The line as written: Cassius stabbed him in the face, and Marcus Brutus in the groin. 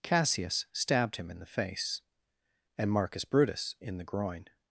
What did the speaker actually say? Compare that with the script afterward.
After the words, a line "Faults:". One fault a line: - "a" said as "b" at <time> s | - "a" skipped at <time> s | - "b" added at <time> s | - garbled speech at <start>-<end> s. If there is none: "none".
Cassius stabbed him in the face, and Marcus Brutus in the groin.
Faults:
none